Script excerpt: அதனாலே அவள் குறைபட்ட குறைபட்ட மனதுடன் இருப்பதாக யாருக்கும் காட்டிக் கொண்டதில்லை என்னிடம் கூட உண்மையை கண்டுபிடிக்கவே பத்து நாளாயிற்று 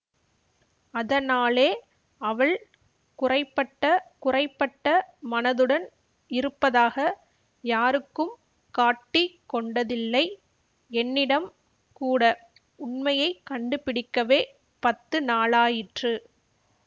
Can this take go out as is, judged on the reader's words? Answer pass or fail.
pass